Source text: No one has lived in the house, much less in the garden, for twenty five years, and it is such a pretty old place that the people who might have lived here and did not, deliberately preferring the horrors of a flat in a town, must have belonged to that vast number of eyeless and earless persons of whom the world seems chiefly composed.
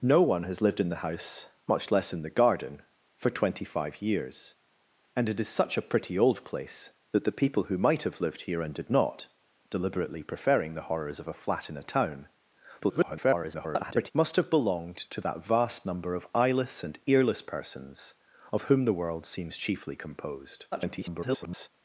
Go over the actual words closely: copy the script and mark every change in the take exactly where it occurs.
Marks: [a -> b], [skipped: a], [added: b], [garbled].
No one has lived in the house, much less in the garden, for twenty five years, and it is such a pretty old place that the people who might have lived here and did not, deliberately preferring the horrors of a flat in a town, [garbled] must have belonged to that vast number of eyeless and earless persons of whom the world seems chiefly composed. [garbled]